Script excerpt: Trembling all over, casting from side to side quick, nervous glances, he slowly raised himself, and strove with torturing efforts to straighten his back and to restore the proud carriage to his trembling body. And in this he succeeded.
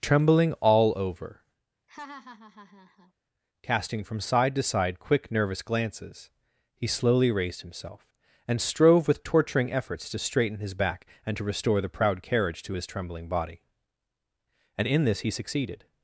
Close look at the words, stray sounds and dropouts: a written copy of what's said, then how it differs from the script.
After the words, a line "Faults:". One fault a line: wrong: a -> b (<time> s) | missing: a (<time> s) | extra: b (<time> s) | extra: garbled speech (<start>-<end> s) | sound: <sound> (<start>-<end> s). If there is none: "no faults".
Trembling all over, casting from side to side quick, nervous glances, he slowly raised himself, and strove with torturing efforts to straighten his back and to restore the proud carriage to his trembling body. And in this he succeeded.
Faults:
sound: laugh (1.9-3.1 s)